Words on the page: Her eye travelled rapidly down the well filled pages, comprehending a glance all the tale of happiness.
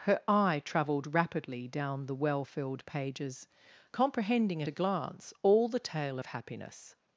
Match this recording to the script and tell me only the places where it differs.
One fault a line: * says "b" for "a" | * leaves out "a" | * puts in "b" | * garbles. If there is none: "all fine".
all fine